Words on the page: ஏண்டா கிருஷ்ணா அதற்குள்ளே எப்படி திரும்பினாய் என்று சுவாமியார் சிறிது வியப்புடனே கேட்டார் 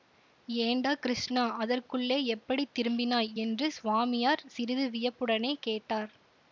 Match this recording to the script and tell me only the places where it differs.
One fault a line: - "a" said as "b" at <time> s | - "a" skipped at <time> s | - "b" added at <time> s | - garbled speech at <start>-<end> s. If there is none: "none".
none